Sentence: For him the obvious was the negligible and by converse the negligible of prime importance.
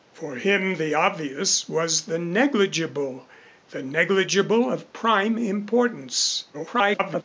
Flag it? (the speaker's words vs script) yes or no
yes